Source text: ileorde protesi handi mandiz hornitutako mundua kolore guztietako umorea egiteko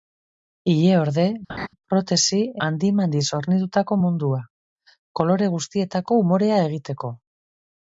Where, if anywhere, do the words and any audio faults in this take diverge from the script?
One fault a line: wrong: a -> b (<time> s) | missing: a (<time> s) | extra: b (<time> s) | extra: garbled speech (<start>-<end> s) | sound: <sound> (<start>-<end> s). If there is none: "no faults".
sound: laugh (1.5-1.7 s)